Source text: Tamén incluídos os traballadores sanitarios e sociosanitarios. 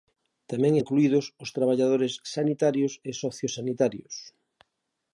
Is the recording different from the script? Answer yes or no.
no